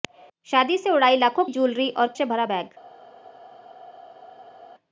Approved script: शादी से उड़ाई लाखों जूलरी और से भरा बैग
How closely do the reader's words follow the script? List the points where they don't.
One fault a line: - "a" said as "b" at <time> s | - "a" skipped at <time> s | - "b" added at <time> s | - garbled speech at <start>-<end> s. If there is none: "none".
none